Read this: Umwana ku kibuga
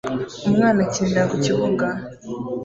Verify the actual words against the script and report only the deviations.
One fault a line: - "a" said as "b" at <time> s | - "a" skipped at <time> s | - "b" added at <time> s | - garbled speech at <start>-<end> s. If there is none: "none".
- "akinira" added at 0.8 s